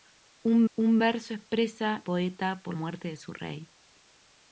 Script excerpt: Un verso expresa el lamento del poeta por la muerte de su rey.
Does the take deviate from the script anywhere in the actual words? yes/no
yes